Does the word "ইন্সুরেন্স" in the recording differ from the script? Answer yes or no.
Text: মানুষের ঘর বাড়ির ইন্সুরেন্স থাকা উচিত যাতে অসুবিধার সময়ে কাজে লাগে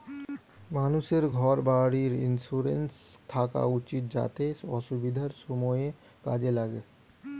no